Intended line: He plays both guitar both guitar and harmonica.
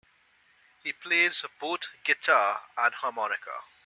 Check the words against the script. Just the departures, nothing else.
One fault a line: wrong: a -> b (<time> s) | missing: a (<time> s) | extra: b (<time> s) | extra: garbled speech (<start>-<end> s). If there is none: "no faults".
missing: both guitar (2.6 s)